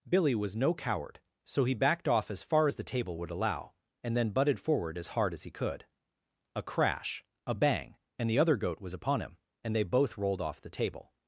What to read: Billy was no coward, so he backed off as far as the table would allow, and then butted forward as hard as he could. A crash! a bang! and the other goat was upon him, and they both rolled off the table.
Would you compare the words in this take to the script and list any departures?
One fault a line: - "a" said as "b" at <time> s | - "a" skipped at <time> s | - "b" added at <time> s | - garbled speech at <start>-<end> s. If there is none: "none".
none